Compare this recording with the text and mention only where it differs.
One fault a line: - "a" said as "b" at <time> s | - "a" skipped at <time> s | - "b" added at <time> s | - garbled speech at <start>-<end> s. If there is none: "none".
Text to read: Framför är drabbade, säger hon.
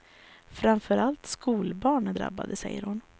- "allt skolbarn" added at 1.0 s